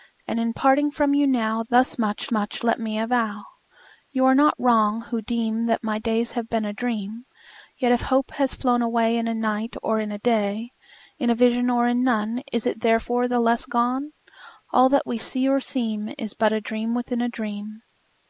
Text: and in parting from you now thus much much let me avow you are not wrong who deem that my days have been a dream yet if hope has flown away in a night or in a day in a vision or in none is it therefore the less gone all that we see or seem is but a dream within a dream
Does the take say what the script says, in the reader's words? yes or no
yes